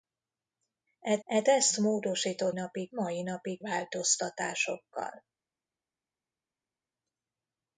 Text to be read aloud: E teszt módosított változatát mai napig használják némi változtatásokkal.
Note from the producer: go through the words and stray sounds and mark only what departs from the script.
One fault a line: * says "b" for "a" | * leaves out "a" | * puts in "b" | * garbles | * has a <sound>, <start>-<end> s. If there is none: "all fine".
* puts in "e"
* says "napig" for "változatát"
* leaves out "használják némi"